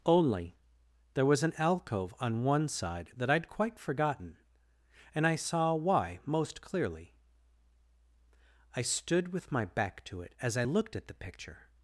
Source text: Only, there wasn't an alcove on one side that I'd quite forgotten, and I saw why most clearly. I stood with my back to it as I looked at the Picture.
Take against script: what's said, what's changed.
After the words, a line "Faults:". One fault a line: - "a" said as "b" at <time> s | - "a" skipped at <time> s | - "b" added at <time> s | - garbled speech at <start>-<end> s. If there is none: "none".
Only, there was an alcove on one side that I'd quite forgotten, and I saw why most clearly. I stood with my back to it as I looked at the Picture.
Faults:
- "wasn't" said as "was" at 1.3 s